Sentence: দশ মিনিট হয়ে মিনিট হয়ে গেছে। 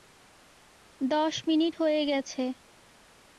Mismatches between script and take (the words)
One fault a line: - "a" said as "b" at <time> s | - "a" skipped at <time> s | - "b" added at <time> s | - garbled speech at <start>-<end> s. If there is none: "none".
- "মিনিট হয়ে" skipped at 2.0 s